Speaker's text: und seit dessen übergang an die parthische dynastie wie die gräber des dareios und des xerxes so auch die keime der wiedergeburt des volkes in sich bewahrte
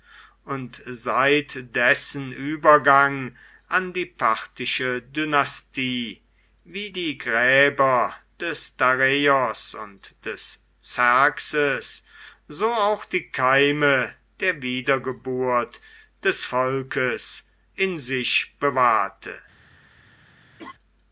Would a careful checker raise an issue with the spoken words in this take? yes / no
no